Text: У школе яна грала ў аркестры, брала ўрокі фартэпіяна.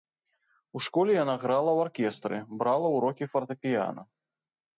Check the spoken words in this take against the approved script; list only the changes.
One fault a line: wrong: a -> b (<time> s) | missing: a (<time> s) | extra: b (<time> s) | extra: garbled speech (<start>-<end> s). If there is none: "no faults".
no faults